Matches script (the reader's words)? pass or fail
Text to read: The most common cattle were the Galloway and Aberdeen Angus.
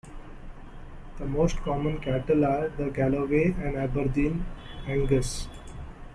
fail